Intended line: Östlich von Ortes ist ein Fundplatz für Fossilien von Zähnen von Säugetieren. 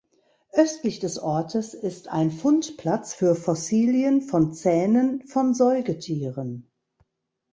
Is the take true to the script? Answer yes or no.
no